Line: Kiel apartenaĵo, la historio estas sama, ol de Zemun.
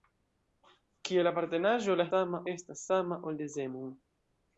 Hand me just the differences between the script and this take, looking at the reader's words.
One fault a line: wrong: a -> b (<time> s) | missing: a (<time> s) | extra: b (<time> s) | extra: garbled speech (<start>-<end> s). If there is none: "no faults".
wrong: historio -> sama (2.1 s)